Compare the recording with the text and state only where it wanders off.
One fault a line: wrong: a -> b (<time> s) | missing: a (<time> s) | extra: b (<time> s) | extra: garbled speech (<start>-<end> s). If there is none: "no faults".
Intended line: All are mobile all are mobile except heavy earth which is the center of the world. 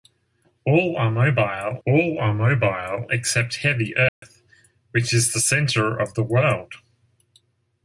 no faults